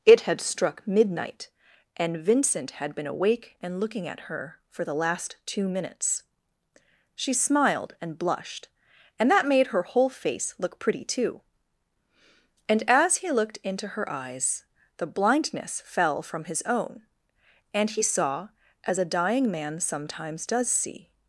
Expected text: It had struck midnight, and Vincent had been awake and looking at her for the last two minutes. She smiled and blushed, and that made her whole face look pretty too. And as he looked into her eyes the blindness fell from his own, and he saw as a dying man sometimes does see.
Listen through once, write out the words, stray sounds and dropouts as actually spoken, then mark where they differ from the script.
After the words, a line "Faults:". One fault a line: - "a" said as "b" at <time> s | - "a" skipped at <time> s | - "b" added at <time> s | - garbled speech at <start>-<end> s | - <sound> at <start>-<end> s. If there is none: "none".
It had struck midnight, and Vincent had been awake and looking at her for the last two minutes. She smiled and blushed, and that made her whole face look pretty too. And as he looked into her eyes the blindness fell from his own, and he saw as a dying man sometimes does see.
Faults:
none